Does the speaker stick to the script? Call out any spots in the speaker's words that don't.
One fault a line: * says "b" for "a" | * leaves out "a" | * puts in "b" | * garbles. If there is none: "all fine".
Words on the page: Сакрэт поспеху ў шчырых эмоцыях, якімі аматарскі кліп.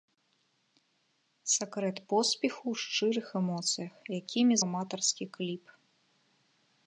all fine